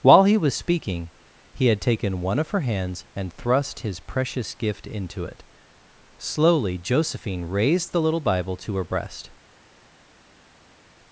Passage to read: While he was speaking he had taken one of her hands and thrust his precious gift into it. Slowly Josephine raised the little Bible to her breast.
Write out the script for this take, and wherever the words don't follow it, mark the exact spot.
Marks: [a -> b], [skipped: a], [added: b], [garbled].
While he was speaking he had taken one of her hands and thrust his precious gift into it. Slowly Josephine raised the little Bible to her breast.